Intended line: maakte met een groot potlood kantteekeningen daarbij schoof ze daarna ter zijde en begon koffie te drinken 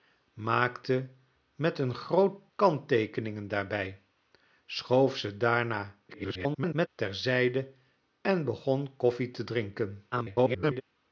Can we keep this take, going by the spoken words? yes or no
no